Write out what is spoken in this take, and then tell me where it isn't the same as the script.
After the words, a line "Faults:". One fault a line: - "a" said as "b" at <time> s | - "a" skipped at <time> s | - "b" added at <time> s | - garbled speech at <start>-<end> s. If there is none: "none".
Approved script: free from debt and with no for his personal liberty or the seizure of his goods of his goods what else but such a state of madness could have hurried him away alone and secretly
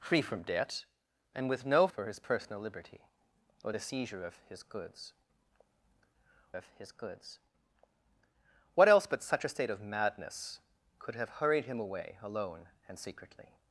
free from debt and with no for his personal liberty or the seizure of his goods of his goods what else but such a state of madness could have hurried him away alone and secretly
Faults:
none